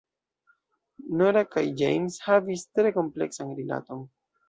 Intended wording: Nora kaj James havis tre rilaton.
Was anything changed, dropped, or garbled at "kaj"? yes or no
no